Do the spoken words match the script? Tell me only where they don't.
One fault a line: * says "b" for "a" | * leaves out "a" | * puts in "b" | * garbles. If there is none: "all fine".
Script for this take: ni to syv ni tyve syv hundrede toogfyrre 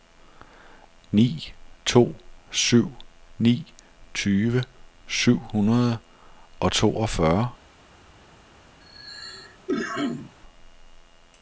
* puts in "og"